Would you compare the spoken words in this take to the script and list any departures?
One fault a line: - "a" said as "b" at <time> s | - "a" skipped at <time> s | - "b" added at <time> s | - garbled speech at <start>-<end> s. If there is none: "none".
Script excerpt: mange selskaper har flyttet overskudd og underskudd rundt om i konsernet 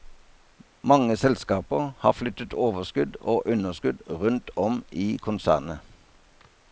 none